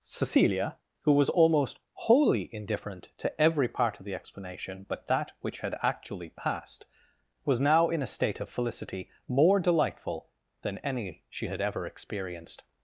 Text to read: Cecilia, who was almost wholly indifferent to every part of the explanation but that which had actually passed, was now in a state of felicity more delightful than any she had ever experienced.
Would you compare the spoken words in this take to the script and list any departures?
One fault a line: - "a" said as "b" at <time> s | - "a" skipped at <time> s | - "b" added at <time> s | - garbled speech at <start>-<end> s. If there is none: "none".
none